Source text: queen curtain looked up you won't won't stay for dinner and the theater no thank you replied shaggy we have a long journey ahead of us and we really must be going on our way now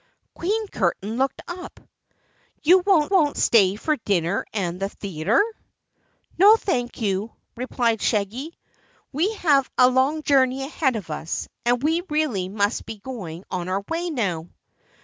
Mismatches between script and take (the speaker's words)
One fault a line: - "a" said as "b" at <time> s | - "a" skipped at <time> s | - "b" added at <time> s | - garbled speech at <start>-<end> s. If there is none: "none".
none